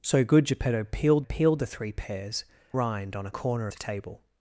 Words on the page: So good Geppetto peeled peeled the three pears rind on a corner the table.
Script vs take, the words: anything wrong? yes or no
no